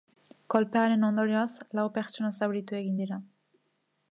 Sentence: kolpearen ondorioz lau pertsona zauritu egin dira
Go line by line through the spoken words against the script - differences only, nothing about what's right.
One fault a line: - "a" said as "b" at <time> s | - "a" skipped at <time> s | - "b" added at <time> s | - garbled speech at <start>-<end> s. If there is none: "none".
none